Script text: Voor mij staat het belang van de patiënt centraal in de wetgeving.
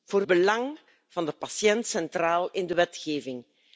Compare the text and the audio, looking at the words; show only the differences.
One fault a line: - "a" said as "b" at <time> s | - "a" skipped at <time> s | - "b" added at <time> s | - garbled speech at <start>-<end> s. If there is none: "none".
- "mij staat het" skipped at 0.2 s